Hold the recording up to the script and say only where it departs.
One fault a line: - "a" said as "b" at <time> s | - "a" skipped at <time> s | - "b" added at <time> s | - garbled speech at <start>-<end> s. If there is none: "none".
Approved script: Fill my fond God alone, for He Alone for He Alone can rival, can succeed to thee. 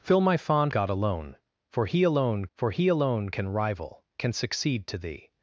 none